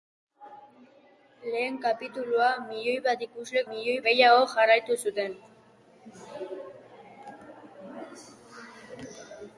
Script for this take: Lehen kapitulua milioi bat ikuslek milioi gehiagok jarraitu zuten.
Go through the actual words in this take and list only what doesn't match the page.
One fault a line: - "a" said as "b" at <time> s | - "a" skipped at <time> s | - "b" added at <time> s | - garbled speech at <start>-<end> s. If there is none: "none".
none